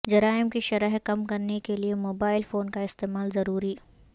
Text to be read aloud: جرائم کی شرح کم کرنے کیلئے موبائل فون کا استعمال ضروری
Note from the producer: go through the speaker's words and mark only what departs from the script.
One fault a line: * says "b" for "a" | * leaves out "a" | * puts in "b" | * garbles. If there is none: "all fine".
all fine